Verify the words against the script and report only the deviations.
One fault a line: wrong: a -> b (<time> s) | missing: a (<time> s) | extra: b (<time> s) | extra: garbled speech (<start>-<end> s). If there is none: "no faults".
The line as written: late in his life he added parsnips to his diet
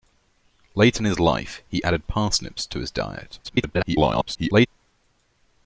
extra: garbled speech (3.4-4.7 s)